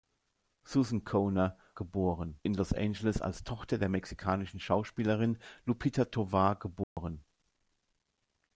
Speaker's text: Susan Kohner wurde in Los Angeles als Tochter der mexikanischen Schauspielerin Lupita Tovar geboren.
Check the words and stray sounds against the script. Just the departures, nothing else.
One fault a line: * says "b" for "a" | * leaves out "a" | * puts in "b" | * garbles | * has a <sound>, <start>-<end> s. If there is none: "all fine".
* says "geboren" for "wurde"
* has a dropout, 6.8-7.0 s